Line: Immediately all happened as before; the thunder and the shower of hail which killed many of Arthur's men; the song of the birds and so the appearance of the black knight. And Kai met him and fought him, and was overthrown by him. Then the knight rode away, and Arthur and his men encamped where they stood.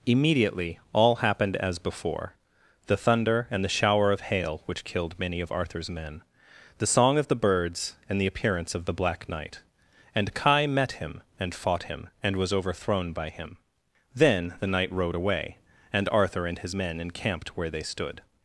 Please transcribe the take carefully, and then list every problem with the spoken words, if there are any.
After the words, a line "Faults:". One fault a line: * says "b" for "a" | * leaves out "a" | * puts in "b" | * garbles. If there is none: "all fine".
Immediately all happened as before; the thunder and the shower of hail which killed many of Arthur's men; the song of the birds and the appearance of the black knight. And Kai met him and fought him, and was overthrown by him. Then the knight rode away, and Arthur and his men encamped where they stood.
Faults:
* leaves out "so"